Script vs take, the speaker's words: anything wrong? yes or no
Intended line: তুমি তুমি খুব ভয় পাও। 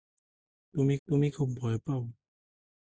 no